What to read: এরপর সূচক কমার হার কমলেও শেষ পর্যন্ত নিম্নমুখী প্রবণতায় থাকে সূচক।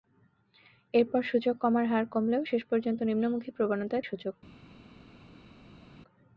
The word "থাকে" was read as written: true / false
false